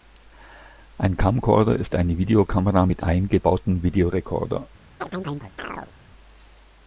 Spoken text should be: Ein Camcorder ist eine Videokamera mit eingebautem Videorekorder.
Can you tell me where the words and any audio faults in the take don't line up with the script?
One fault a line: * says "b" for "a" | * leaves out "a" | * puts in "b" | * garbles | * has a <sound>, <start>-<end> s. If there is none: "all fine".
* has a chirp, 5.0-5.9 s